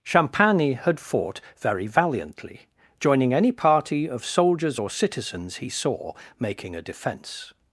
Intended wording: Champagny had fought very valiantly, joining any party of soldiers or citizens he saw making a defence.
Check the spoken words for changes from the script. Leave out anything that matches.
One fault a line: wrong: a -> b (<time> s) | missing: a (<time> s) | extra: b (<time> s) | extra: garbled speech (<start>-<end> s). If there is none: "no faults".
no faults